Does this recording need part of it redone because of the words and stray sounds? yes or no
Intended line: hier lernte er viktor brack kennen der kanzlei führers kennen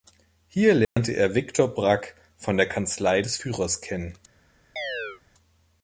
yes